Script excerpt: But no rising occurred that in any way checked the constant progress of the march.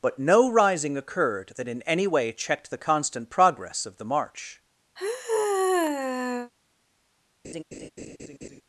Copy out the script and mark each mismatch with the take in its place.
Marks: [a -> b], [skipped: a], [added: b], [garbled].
But no rising occurred that in any way checked the constant progress of the march.